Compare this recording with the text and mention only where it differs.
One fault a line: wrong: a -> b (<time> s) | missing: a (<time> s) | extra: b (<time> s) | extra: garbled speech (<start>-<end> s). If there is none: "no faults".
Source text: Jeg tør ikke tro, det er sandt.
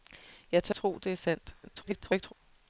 missing: ikke (0.8 s)
extra: garbled speech (1.6-2.3 s)